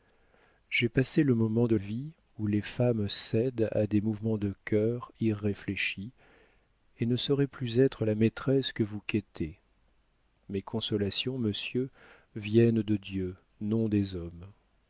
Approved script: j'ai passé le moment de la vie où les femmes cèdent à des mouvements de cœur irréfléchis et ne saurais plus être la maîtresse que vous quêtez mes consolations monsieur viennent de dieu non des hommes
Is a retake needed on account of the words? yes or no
yes